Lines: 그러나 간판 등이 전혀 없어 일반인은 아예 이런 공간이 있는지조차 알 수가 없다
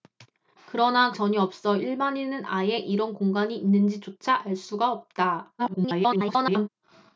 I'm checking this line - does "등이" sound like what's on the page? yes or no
no